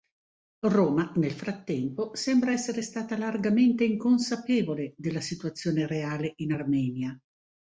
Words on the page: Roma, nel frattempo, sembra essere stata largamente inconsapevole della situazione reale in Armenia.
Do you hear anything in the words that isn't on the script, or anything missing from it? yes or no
no